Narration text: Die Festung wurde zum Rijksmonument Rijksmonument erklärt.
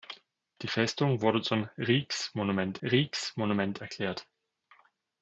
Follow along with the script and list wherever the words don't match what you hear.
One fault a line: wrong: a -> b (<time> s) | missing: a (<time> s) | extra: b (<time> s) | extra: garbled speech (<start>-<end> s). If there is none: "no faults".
no faults